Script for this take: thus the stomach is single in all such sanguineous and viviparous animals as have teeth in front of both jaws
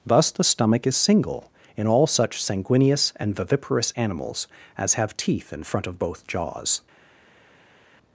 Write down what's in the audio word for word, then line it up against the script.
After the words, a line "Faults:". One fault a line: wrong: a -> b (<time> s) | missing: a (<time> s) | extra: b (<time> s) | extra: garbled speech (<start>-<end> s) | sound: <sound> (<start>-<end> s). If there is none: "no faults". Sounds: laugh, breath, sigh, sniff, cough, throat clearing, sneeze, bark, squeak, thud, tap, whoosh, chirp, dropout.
thus the stomach is single in all such sanguineous and viviparous animals as have teeth in front of both jaws
Faults:
no faults